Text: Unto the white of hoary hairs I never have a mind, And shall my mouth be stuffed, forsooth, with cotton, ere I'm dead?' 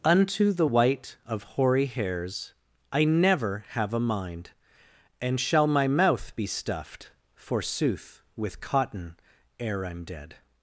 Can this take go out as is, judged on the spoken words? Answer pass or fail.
pass